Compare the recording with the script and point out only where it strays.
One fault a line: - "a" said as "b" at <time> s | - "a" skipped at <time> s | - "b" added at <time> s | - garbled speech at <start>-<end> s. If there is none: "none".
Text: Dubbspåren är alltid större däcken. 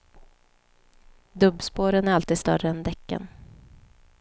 - "än" added at 2.7 s